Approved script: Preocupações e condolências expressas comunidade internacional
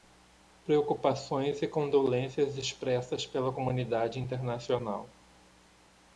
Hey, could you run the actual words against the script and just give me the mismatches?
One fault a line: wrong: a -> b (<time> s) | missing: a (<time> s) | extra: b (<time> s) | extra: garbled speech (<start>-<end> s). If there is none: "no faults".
extra: pela (3.3 s)